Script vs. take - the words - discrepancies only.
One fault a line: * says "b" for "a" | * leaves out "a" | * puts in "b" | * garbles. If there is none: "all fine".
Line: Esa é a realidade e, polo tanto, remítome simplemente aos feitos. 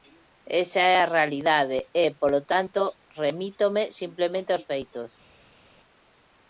all fine